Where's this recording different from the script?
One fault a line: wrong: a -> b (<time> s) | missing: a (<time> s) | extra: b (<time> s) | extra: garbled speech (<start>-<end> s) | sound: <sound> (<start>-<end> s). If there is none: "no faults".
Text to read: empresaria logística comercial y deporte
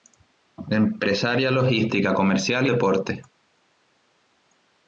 no faults